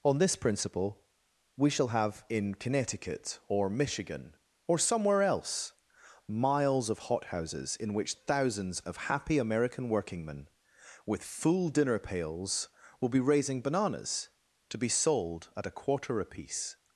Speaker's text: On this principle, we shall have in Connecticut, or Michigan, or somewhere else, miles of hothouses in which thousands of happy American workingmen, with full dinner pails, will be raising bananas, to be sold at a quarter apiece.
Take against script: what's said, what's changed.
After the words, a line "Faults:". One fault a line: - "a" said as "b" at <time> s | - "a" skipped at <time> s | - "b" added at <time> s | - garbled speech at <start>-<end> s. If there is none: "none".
On this principle, we shall have in Connecticut, or Michigan, or somewhere else, miles of hothouses in which thousands of happy American workingmen, with full dinner pails, will be raising bananas, to be sold at a quarter apiece.
Faults:
none